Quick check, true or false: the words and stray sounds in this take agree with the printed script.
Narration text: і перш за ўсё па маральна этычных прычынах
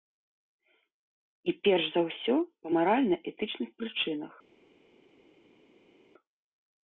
true